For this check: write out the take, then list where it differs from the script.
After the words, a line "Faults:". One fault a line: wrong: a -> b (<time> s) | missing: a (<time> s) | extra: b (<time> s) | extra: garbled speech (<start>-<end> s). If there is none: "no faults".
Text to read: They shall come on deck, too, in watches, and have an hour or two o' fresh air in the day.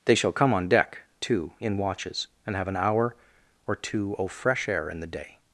They shall come on deck, too, in watches, and have an hour or two o' fresh air in the day.
Faults:
no faults